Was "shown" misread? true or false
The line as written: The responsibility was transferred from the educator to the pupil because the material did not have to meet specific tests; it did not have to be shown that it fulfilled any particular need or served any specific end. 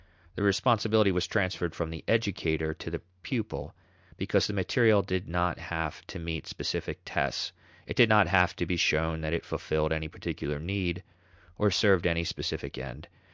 false